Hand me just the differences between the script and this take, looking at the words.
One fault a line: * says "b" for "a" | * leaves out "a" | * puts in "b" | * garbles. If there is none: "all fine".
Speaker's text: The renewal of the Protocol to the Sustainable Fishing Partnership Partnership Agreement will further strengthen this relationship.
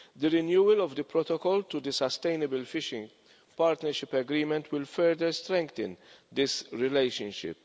* leaves out "Partnership"